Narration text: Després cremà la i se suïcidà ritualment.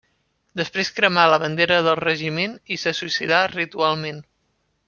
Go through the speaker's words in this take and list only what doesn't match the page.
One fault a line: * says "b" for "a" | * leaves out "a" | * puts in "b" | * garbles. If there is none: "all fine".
* puts in "bandera del regiment"